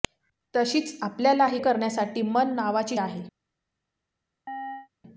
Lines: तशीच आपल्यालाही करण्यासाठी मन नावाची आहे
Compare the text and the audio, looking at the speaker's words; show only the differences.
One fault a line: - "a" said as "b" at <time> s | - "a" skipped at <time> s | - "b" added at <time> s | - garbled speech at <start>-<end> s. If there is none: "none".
none